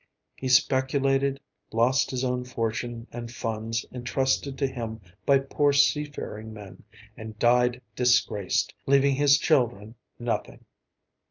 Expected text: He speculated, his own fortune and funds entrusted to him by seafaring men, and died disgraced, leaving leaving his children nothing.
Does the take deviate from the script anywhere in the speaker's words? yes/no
yes